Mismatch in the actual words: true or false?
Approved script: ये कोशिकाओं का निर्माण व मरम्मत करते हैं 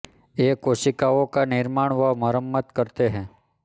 false